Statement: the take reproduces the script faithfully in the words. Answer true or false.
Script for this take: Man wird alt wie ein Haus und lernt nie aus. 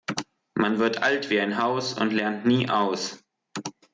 true